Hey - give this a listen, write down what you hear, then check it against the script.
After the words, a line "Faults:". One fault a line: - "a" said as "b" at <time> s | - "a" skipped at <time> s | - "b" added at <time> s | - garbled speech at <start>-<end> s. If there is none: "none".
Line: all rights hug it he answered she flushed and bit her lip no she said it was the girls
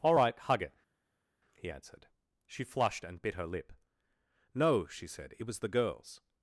all right hug it he answered she flushed and bit her lip no she said it was the girls
Faults:
- "rights" said as "right" at 0.1 s